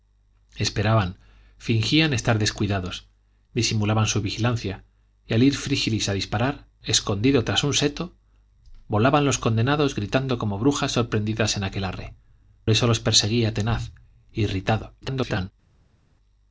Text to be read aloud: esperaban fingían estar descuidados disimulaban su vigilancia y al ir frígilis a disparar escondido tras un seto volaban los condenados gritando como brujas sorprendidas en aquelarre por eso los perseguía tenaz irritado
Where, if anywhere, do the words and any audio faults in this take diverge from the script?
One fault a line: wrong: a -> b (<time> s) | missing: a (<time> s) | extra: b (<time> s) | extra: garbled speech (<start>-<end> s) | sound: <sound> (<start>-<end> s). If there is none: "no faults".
missing: por (12.1 s)
extra: garbled speech (15.0-15.5 s)